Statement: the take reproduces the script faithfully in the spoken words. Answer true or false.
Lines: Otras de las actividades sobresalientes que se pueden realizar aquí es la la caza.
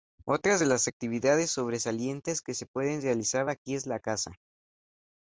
false